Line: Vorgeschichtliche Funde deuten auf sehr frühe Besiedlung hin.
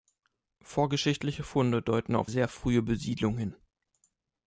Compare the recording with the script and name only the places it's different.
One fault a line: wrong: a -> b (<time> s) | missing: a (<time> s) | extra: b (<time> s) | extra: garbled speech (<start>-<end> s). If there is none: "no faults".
no faults